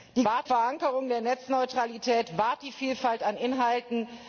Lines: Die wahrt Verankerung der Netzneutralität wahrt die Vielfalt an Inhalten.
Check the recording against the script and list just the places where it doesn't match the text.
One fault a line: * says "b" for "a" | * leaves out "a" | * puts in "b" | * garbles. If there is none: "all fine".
all fine